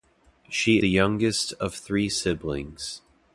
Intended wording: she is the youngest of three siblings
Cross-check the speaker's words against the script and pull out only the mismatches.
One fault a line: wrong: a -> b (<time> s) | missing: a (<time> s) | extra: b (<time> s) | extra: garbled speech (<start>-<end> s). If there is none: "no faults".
missing: is (0.8 s)